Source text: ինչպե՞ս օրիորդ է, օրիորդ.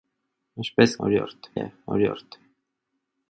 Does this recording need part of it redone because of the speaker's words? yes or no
no